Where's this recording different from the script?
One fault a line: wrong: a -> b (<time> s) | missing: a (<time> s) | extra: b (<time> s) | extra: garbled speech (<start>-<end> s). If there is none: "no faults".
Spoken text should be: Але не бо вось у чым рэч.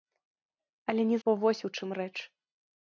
no faults